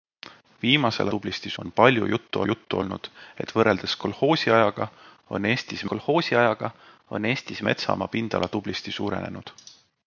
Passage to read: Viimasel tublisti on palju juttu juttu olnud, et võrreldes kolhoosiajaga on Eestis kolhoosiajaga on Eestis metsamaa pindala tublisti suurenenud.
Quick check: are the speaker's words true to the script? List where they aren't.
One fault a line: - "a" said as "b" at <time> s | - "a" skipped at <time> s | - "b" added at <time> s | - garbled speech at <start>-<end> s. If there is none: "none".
none